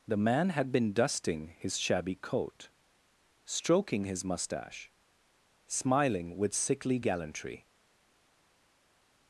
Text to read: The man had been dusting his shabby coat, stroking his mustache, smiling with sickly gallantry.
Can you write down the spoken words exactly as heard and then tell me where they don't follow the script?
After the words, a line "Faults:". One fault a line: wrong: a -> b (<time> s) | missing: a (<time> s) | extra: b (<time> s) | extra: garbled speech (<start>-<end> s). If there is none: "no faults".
The man had been dusting his shabby coat, stroking his mustache, smiling with sickly gallantry.
Faults:
no faults